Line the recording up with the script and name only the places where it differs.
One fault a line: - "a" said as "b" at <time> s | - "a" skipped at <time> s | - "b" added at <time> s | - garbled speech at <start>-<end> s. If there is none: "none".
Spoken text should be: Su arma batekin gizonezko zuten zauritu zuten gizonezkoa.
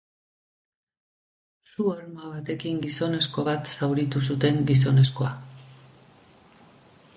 - "zuten" said as "bat" at 3.5 s